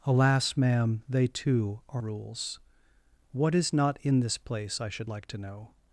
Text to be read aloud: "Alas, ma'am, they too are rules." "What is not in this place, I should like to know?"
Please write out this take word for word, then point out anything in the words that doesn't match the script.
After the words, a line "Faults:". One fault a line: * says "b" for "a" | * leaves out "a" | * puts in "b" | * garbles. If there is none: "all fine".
"Alas, ma'am, they too are rules." "What is not in this place, I should like to know?"
Faults:
all fine